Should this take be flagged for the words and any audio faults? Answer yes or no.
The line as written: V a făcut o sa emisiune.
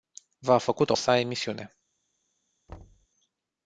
yes